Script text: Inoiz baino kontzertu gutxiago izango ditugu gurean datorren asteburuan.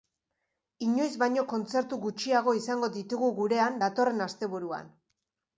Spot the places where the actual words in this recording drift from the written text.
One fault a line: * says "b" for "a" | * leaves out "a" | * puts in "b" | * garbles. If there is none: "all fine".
all fine